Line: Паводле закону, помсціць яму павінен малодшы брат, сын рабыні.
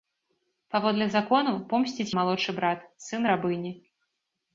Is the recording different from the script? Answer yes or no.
yes